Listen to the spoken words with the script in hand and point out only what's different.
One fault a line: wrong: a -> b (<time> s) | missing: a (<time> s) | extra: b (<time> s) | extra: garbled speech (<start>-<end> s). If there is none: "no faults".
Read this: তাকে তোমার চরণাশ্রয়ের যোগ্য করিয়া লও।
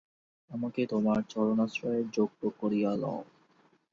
wrong: তাকে -> আমাকে (0.5 s)